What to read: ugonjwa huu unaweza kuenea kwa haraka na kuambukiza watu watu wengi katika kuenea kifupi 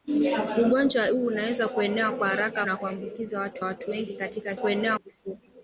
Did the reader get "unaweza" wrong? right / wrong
right